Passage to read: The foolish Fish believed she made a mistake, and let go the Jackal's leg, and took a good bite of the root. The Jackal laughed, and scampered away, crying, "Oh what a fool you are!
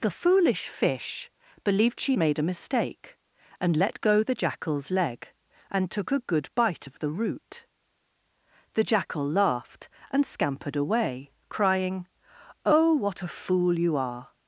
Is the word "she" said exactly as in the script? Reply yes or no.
yes